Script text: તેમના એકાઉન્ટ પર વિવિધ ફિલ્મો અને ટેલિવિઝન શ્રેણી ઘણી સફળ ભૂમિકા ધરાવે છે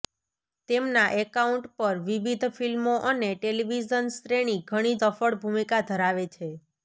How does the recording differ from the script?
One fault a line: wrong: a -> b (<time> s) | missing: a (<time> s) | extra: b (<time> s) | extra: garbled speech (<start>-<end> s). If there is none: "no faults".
no faults